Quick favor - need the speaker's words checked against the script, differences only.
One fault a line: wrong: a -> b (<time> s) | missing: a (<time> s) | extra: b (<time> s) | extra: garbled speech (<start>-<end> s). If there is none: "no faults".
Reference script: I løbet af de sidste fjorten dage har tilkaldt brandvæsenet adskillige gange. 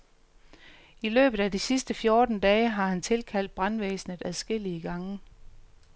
extra: han (2.9 s)